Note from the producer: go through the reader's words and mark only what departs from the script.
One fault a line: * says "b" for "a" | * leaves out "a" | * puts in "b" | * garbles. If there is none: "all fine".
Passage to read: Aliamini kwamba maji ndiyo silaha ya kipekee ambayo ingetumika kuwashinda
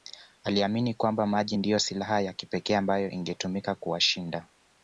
all fine